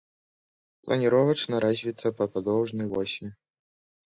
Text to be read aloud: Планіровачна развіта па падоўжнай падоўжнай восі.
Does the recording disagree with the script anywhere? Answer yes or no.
yes